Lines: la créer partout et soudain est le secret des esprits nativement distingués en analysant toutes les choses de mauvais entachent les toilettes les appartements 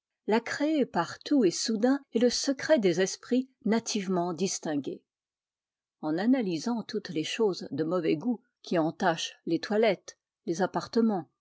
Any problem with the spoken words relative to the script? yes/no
yes